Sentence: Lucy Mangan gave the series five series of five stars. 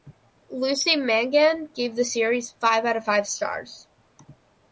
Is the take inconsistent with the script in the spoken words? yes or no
yes